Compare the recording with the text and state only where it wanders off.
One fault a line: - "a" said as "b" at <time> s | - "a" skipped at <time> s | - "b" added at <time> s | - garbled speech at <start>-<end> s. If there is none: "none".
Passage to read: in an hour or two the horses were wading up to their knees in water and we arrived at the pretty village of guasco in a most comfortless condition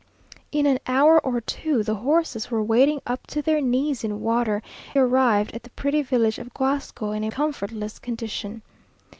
- "and we" skipped at 4.6 s
- "most" skipped at 7.3 s